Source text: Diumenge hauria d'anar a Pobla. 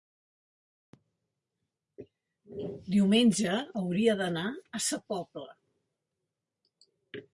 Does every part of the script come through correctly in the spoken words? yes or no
no